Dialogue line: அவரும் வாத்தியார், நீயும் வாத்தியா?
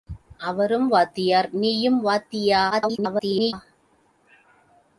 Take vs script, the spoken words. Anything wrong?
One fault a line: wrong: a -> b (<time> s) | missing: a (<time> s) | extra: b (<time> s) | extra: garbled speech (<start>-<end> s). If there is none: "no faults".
extra: garbled speech (2.7-3.5 s)